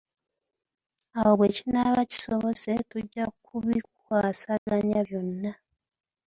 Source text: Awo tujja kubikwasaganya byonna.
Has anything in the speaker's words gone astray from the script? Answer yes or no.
yes